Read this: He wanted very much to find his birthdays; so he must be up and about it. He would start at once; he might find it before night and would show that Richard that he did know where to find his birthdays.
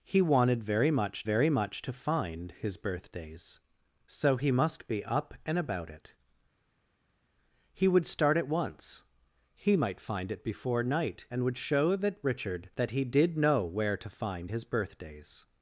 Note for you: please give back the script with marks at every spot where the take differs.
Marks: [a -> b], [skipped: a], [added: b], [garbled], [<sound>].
He wanted very much [added: very much] to find his birthdays; so he must be up and about it. He would start at once; he might find it before night and would show that Richard that he did know where to find his birthdays.